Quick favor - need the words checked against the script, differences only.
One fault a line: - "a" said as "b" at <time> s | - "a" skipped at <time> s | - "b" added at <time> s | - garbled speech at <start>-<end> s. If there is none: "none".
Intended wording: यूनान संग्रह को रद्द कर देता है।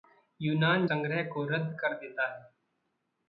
none